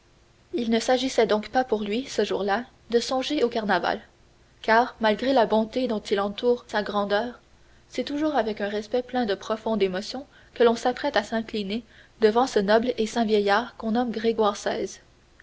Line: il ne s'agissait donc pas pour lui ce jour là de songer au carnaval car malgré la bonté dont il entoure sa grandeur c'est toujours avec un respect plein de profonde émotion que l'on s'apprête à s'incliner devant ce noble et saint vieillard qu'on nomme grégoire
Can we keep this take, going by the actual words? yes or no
yes